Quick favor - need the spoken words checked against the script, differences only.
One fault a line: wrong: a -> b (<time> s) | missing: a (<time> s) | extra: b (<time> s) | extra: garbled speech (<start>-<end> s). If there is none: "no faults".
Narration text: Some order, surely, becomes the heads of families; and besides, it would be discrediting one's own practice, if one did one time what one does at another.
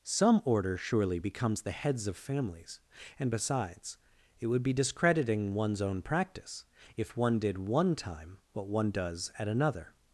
no faults